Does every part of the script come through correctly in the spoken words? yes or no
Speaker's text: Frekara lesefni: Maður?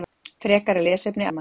yes